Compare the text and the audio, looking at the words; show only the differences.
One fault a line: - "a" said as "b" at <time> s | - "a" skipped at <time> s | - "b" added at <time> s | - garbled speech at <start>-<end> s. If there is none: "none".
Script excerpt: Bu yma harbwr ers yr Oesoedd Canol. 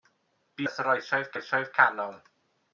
- "yma harbwr" skipped at 0.7 s
- "Oesoedd" added at 1.3 s